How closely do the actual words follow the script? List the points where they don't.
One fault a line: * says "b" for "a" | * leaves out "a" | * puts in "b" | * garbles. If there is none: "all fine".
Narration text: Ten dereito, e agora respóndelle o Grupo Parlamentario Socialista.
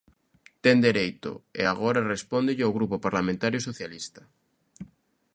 all fine